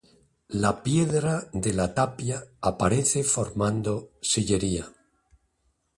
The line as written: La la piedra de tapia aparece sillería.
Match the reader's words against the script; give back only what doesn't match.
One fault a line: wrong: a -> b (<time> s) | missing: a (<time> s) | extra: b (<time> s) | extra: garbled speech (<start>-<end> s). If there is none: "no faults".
missing: la (0.8 s)
extra: la (1.7 s)
extra: formando (3.2 s)